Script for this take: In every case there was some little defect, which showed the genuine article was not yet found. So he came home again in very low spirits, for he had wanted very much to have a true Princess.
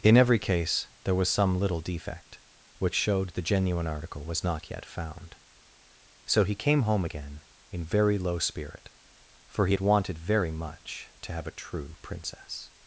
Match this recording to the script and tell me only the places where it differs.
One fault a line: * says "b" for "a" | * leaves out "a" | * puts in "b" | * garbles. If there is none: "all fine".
* says "spirit" for "spirits"